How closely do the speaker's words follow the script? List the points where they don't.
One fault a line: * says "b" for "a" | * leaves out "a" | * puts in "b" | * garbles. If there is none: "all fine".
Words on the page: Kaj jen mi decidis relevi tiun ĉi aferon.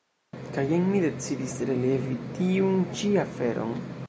all fine